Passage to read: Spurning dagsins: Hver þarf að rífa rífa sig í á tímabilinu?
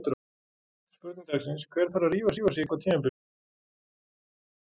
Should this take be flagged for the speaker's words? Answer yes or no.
no